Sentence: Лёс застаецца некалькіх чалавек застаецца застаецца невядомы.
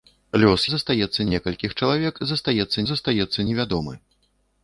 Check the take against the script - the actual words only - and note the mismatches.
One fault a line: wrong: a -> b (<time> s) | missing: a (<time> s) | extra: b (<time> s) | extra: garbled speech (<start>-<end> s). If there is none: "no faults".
no faults